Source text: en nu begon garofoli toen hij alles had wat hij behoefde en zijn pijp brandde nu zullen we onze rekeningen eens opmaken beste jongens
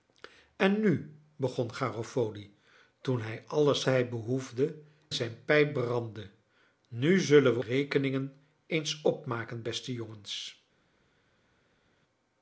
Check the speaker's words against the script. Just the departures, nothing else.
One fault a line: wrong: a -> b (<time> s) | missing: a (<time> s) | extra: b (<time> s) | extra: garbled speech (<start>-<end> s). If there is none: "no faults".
missing: had wat (3.8 s)
missing: en (4.8 s)
missing: onze (7.6 s)